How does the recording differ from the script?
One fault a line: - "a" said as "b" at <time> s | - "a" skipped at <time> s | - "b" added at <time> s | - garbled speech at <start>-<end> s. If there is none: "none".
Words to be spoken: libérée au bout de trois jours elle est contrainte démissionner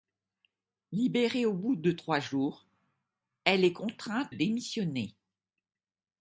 none